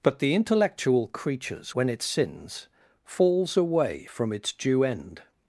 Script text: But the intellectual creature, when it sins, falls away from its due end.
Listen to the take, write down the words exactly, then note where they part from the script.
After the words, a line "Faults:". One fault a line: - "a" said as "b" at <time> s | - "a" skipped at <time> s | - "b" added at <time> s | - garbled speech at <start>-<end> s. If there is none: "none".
But the intellectual creatures, when it sins, falls away from its due end.
Faults:
- "creature" said as "creatures" at 1.1 s